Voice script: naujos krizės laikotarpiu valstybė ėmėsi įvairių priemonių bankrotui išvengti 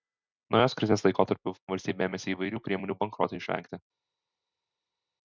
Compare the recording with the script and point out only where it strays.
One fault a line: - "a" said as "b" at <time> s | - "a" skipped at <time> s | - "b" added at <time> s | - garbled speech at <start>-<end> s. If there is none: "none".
none